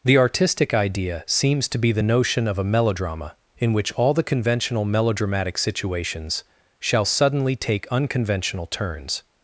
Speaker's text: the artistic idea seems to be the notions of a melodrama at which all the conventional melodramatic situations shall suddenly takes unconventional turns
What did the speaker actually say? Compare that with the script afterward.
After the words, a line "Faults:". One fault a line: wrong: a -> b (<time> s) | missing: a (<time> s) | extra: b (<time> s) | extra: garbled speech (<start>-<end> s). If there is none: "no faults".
the artistic idea seems to be the notion of a melodrama in which all the conventional melodramatic situations shall suddenly take unconventional turns
Faults:
wrong: notions -> notion (2.0 s)
wrong: at -> in (3.6 s)
wrong: takes -> take (7.5 s)